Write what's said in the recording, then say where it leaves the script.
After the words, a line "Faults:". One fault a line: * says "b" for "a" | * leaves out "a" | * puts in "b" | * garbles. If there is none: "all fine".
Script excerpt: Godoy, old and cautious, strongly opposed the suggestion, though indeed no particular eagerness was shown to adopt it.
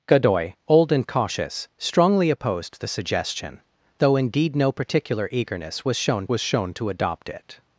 Godoy, old and cautious, strongly opposed the suggestion, though indeed no particular eagerness was shown was shown to adopt it.
Faults:
* puts in "was shown"